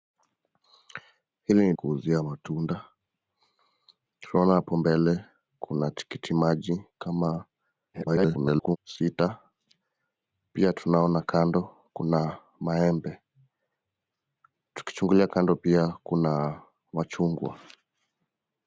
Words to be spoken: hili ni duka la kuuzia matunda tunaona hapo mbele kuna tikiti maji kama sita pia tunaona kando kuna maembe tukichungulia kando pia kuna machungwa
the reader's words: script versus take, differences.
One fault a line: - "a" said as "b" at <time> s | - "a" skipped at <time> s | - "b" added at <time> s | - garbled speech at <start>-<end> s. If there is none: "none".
- "duka la" skipped at 1.7 s
- garbled speech at 7.9-8.8 s